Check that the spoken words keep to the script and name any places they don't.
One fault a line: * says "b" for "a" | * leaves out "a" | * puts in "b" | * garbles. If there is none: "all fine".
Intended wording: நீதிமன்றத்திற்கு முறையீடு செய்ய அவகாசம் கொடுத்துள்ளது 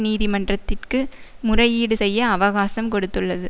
all fine